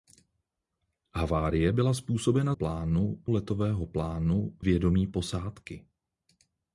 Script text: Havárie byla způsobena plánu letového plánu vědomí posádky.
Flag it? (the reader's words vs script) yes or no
no